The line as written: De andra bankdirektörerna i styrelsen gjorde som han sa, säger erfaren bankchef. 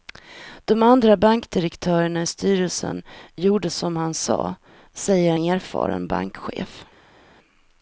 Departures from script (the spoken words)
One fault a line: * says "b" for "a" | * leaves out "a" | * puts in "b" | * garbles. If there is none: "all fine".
all fine